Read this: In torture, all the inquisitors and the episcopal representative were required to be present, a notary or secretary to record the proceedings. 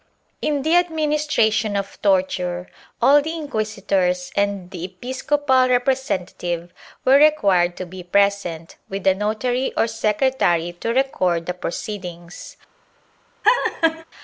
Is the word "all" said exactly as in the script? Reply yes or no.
yes